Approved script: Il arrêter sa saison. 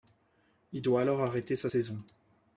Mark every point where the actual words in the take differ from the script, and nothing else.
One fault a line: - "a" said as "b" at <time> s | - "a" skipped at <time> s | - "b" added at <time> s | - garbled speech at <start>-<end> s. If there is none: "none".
- "doit alors" added at 0.8 s